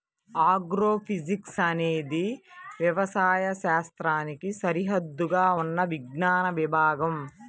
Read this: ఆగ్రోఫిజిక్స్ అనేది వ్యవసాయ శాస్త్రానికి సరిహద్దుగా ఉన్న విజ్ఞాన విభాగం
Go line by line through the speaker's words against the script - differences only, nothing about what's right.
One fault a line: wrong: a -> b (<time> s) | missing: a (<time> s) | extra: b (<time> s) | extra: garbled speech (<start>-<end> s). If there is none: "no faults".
no faults